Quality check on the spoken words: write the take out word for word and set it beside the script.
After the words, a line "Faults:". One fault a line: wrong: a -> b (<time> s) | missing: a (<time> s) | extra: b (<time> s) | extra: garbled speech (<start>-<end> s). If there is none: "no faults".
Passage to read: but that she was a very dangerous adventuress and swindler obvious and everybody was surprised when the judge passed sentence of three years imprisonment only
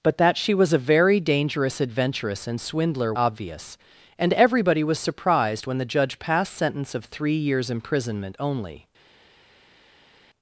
but that she was a very dangerous adventuress and swindler obvious and everybody was surprised when the judge passed sentence of three years imprisonment only
Faults:
no faults